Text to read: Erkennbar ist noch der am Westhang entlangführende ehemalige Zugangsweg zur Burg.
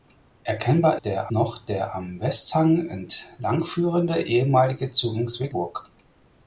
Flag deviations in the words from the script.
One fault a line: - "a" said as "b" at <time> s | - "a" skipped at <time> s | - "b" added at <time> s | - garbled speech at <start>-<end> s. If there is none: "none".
- "ist" said as "der" at 0.9 s
- "zur" skipped at 5.5 s